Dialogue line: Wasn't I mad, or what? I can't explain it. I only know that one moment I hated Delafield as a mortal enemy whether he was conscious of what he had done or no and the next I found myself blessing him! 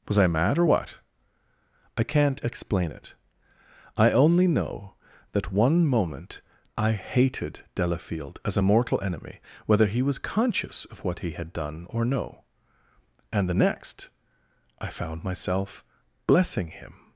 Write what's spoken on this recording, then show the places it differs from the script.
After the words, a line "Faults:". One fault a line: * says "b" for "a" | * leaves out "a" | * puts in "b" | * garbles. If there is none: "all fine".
Was I mad, or what? I can't explain it. I only know that one moment I hated Delafield as a mortal enemy whether he was conscious of what he had done or no and the next I found myself blessing him!
Faults:
* says "Was" for "Wasn't"